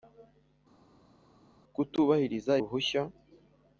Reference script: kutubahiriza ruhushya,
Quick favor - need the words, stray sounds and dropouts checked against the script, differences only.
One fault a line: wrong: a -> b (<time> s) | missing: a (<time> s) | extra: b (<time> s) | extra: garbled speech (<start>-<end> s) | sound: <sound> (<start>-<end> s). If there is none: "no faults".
no faults